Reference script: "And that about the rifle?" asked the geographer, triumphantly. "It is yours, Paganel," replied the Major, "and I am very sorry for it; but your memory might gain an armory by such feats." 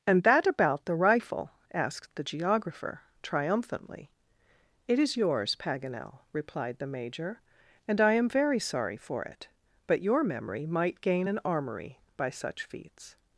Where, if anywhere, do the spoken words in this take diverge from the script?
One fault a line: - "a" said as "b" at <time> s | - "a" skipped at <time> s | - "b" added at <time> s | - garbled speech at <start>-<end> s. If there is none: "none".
none